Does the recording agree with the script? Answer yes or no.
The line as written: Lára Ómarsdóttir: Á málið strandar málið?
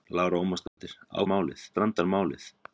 yes